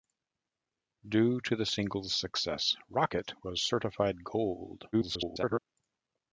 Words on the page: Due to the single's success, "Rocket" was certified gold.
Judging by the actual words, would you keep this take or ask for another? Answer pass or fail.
fail